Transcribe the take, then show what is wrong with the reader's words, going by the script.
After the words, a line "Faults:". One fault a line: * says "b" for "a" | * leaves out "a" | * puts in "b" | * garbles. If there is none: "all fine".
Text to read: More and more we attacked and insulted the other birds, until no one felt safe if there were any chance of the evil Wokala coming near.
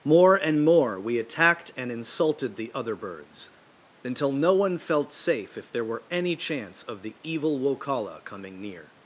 More and more we attacked and insulted the other birds, until no one felt safe if there were any chance of the evil Wokala coming near.
Faults:
all fine